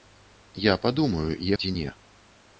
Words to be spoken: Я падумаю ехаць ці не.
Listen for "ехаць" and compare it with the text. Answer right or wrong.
wrong